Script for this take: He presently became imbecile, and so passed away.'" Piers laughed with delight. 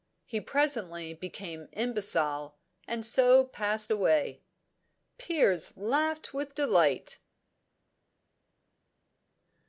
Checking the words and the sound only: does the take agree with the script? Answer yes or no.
yes